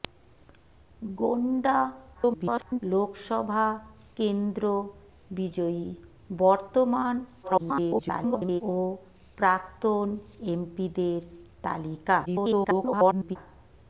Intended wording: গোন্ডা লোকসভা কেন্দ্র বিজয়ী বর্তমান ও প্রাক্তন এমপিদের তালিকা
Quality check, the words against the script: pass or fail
fail